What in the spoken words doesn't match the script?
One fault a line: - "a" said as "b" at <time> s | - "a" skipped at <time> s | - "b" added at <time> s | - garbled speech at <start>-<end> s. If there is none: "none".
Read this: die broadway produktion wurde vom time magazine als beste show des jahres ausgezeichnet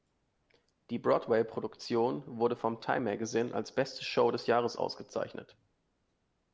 none